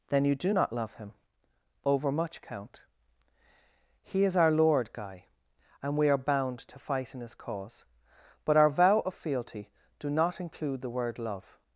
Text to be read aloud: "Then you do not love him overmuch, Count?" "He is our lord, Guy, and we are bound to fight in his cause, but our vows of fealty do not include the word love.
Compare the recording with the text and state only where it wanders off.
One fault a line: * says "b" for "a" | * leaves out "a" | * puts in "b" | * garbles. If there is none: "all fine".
* says "vow" for "vows"